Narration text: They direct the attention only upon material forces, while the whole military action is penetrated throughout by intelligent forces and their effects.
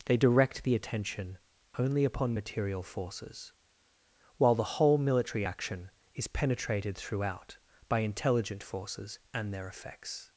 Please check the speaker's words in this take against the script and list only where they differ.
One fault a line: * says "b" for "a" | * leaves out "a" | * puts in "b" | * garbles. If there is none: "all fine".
all fine